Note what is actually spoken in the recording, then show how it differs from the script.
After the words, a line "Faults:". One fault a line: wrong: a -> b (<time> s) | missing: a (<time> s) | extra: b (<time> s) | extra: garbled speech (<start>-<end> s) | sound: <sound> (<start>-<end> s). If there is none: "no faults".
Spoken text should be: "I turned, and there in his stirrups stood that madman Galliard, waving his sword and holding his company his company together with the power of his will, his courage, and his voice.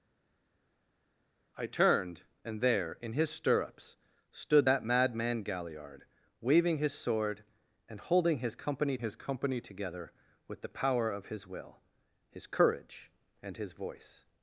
"I turned, and there in his stirrups stood that madman Galliard, waving his sword and holding his company his company together with the power of his will, his courage, and his voice.
Faults:
no faults